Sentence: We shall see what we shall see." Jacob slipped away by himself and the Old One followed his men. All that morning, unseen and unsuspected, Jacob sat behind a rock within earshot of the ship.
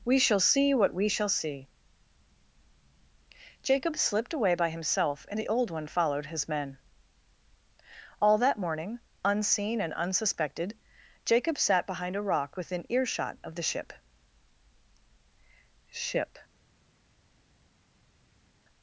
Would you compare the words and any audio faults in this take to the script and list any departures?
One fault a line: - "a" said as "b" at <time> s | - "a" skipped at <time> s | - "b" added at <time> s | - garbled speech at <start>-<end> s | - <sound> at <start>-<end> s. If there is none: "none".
- "ship" added at 15.9 s